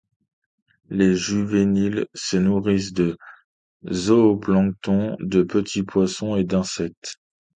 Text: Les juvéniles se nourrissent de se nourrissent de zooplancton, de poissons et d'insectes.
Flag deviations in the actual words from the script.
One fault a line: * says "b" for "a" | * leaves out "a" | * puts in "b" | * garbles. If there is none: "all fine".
* says "zooplancton" for "se nourrissent"
* says "petits" for "zooplancton de"